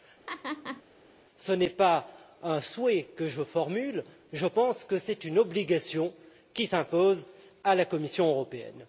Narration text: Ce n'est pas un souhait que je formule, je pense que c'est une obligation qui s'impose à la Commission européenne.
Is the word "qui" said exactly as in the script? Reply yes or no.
yes